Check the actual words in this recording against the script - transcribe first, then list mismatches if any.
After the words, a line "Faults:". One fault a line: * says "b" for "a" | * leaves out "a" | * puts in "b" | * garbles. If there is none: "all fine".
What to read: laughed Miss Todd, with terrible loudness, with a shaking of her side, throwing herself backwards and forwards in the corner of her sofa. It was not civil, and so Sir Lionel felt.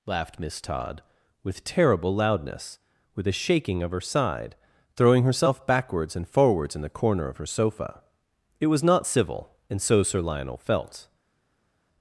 laughed Miss Todd, with terrible loudness, with a shaking of her side, throwing herself backwards and forwards in the corner of her sofa. It was not civil, and so Sir Lionel felt.
Faults:
all fine